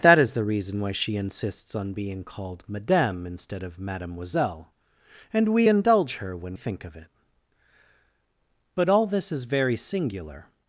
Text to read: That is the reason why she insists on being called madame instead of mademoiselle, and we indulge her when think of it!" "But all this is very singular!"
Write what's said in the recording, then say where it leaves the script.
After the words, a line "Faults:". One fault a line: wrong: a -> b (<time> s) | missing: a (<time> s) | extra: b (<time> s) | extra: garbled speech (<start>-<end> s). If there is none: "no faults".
That is the reason why she insists on being called madame instead of mademoiselle, and we indulge her when think of it!" "But all this is very singular!"
Faults:
no faults